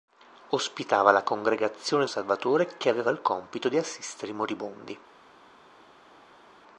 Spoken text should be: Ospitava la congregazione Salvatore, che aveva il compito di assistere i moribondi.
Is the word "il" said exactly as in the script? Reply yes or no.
yes